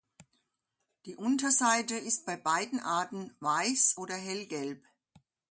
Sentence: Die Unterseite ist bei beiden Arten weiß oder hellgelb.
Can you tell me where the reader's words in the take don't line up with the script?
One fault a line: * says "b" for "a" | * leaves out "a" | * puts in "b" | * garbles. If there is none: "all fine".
all fine